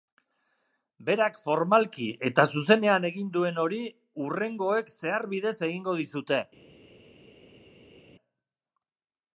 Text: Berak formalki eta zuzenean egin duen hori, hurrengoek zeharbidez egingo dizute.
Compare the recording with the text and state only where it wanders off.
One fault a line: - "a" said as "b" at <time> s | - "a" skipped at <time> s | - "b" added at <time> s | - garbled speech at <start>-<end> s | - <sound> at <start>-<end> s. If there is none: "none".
none